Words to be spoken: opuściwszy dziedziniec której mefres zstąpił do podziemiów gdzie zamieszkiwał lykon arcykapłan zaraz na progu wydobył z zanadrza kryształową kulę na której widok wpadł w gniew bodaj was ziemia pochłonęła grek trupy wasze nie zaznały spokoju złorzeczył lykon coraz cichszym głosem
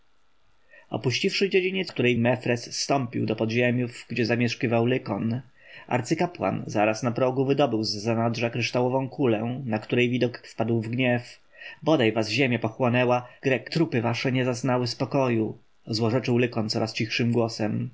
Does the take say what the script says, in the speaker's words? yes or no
yes